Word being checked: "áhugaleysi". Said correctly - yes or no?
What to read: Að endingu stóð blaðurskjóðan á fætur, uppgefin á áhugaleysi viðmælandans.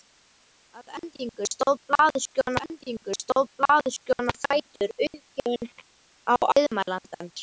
no